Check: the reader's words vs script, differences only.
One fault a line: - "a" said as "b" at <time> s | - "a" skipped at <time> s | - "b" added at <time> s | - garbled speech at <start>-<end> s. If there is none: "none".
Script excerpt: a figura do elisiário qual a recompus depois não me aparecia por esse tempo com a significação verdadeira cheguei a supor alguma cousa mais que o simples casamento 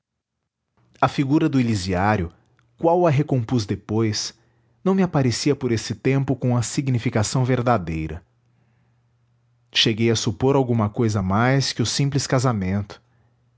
none